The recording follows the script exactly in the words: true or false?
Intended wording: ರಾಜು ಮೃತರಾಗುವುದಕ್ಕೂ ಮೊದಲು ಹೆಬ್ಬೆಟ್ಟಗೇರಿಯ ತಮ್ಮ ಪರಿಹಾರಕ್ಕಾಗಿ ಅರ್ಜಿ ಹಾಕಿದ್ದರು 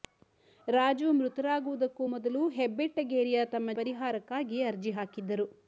true